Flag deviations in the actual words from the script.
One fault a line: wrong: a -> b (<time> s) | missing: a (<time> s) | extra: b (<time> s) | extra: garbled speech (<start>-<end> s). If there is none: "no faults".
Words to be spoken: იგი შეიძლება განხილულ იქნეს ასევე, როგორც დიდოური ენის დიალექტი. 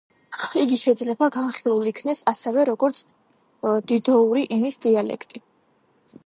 no faults